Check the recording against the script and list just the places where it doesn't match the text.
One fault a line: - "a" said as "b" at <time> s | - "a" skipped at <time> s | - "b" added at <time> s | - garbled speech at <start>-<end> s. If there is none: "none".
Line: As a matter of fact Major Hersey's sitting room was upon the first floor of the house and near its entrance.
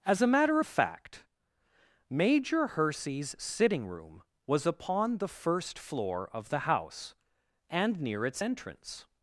none